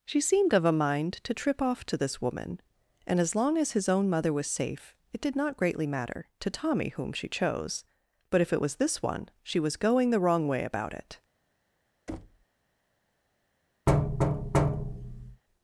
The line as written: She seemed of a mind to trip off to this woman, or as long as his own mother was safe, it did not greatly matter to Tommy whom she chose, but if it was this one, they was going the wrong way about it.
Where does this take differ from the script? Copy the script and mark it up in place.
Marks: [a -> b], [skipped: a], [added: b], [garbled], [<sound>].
She seemed of a mind to trip off to this woman, [or -> and] as long as his own mother was safe, it did not greatly matter to Tommy whom she chose, but if it was this one, [they -> she] was going the wrong way about it. [thud] [thud]